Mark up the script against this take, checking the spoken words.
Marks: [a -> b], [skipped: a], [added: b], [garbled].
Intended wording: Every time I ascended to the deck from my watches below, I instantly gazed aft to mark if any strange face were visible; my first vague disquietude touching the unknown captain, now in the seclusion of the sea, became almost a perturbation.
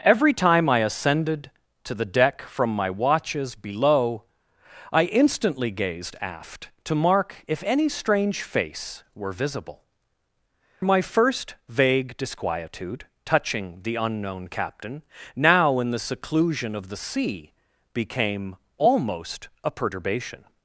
Every time I ascended to the deck from my watches below, I instantly gazed aft to mark if any strange face were visible; my first vague disquietude touching the unknown captain, now in the seclusion of the sea, became almost a perturbation.